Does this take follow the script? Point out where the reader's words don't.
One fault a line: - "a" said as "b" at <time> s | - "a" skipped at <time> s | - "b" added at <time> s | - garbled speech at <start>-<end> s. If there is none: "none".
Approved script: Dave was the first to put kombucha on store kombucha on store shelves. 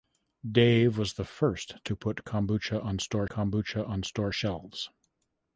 none